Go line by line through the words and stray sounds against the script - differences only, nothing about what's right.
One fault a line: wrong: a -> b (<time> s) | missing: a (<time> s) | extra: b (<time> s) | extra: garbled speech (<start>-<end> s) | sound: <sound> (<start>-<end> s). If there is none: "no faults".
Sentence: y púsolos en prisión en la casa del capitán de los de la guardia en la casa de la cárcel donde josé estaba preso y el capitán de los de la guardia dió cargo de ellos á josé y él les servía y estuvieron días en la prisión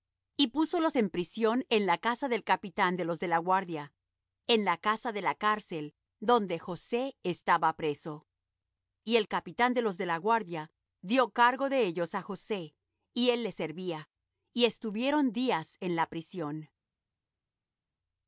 no faults